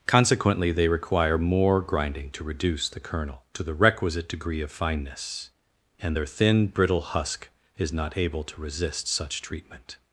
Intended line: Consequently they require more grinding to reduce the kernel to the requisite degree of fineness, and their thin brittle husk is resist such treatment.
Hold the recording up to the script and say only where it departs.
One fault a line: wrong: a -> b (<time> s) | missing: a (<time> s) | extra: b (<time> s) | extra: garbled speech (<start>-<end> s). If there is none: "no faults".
extra: not able to (7.9 s)